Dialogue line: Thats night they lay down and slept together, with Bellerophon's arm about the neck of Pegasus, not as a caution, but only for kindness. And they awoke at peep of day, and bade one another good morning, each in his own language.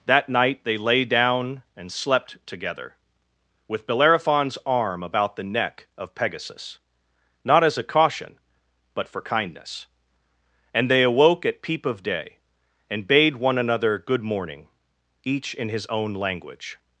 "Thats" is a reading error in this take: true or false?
true